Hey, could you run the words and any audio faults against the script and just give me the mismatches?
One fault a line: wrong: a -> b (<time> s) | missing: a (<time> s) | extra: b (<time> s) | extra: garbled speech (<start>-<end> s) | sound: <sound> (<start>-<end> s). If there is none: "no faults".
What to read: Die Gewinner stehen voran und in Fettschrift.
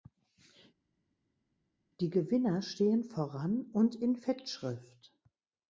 no faults